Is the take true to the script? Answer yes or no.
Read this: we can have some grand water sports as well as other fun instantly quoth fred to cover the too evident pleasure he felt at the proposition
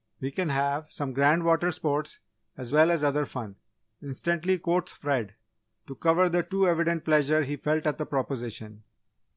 yes